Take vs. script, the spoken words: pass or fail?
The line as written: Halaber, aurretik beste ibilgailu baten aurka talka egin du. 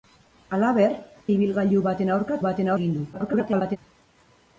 fail